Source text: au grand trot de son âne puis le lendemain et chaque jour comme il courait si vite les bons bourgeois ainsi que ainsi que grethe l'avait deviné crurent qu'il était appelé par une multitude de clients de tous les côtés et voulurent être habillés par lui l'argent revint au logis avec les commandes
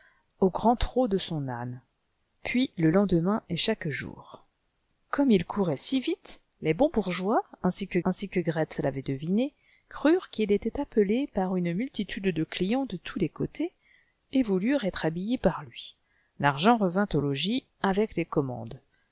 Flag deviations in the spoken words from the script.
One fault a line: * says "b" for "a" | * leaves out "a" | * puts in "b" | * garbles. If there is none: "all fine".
all fine